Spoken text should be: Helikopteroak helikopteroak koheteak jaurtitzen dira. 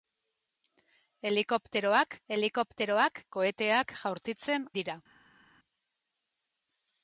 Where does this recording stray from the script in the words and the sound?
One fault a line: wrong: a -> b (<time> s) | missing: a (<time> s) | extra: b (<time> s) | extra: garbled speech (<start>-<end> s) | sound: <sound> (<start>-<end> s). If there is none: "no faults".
no faults